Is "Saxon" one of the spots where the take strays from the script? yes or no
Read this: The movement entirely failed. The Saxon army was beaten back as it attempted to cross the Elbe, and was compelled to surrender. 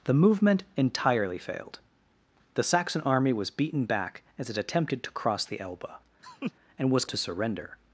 no